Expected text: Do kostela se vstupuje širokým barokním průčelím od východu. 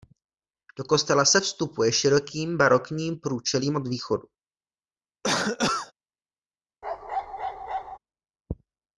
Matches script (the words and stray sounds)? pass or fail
fail